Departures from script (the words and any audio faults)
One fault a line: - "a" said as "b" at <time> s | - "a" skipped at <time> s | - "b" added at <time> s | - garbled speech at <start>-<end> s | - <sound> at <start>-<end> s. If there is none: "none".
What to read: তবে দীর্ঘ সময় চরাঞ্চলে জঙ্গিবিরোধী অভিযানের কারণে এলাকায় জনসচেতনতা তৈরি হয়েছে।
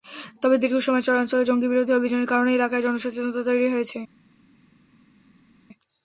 none